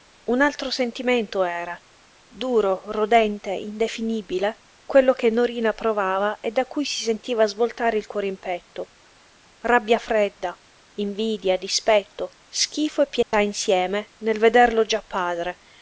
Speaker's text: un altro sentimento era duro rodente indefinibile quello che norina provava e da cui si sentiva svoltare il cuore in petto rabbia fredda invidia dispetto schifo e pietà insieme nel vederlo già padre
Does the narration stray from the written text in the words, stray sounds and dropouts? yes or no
yes